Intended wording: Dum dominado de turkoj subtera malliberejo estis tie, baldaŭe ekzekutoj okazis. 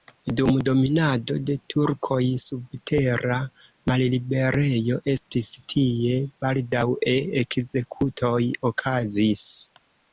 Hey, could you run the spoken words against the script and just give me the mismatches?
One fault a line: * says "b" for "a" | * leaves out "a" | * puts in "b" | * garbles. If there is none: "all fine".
all fine